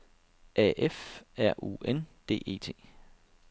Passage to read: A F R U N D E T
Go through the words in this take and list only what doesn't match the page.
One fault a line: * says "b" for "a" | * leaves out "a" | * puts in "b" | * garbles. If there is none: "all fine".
all fine